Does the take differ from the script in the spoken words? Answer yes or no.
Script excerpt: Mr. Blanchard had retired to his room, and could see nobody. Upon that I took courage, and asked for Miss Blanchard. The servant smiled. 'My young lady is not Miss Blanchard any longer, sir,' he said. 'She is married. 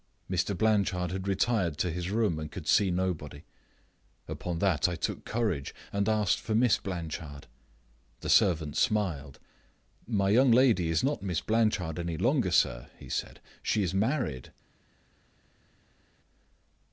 no